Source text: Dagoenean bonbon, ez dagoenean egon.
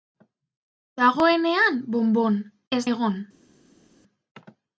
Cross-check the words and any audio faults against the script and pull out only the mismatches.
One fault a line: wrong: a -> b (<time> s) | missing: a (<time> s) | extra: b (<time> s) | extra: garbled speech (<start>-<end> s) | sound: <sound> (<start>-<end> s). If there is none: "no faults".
missing: dagoenean (2.8 s)